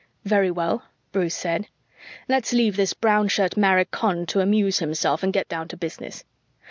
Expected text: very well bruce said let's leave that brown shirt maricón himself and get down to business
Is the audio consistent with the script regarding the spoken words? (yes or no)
no